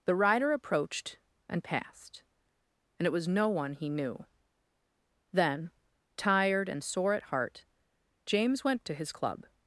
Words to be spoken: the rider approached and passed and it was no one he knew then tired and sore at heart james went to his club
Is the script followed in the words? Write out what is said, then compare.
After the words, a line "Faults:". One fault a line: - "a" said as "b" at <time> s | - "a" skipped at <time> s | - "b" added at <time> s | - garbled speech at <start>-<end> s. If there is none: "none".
the rider approached and passed and it was no one he knew then tired and sore at heart james went to his club
Faults:
none